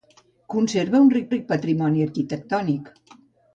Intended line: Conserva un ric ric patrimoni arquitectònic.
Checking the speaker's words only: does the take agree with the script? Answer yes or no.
yes